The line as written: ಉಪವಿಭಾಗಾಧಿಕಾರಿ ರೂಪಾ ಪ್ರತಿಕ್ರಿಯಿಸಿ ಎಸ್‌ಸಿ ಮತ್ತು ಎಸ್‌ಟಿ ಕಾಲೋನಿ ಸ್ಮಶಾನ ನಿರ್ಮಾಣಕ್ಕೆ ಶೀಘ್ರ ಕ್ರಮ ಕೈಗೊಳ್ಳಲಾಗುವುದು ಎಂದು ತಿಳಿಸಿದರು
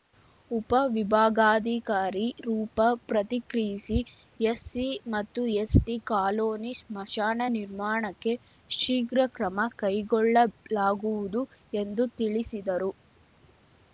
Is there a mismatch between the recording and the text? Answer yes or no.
no